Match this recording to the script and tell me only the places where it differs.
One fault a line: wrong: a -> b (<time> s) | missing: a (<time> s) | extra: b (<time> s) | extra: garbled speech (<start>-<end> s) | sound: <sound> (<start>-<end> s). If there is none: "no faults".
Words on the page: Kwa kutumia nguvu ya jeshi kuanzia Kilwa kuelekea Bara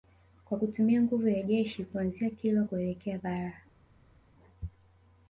no faults